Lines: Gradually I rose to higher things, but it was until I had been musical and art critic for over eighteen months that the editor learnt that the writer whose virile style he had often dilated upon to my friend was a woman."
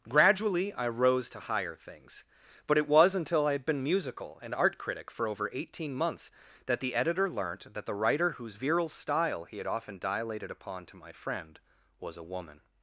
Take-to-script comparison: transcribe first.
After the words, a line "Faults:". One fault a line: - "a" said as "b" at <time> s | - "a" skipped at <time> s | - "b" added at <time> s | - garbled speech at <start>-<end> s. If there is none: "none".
Gradually I rose to higher things, but it was until I had been musical and art critic for over eighteen months that the editor learnt that the writer whose virile style he had often dilated upon to my friend was a woman."
Faults:
none